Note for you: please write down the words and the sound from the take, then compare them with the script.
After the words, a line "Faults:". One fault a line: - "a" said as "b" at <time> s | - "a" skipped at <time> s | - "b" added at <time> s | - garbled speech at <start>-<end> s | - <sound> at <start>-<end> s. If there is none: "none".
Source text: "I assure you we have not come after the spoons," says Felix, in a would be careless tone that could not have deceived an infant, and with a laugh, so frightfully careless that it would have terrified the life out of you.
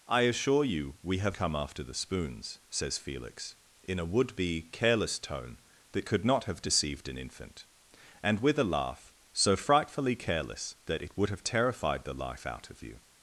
"I assure you we have come after the spoons," says Felix, in a would be careless tone that could not have deceived an infant, and with a laugh, so frightfully careless that it would have terrified the life out of you.
Faults:
- "not" skipped at 1.4 s